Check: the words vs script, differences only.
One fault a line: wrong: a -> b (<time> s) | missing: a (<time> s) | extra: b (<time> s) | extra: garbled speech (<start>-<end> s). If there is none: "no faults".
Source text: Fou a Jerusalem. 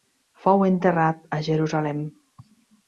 extra: enterrat (0.7 s)